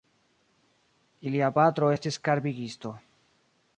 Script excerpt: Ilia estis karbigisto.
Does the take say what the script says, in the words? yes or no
no